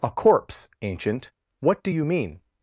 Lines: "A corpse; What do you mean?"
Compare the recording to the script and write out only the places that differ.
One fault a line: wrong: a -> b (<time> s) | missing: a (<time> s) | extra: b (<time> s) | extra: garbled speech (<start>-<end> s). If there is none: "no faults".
extra: Ancient (0.8 s)